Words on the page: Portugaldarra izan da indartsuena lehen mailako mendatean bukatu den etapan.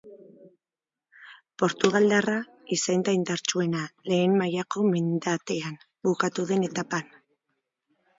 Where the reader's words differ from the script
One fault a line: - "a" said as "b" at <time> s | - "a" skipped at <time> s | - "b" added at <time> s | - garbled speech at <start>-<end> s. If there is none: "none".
none